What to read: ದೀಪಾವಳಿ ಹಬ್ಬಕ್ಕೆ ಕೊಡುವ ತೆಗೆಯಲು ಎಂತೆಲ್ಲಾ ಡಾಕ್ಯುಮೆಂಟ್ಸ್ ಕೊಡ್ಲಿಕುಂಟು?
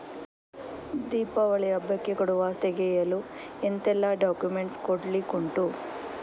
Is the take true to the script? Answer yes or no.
yes